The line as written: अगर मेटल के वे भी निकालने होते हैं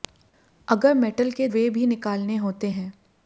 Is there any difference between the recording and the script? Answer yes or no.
no